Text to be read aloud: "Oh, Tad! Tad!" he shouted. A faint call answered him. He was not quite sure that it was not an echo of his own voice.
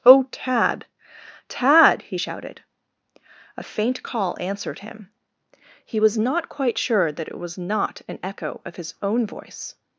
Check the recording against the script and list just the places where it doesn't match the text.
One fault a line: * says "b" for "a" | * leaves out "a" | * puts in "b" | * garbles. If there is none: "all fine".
all fine